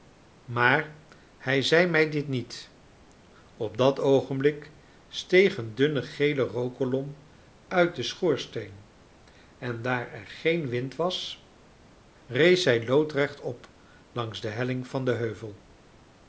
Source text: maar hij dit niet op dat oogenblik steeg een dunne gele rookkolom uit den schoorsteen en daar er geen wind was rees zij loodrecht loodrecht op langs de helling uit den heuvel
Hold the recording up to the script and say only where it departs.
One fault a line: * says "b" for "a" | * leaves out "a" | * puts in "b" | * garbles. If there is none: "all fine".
* puts in "zei mij"
* leaves out "loodrecht"
* says "van" for "uit"